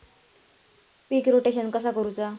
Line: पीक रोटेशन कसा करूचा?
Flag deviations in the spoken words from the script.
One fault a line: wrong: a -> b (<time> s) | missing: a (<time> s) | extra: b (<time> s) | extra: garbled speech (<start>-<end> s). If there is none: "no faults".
no faults